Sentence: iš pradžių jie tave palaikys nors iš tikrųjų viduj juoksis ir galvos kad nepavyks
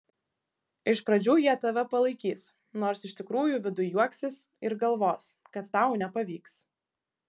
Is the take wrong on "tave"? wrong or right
right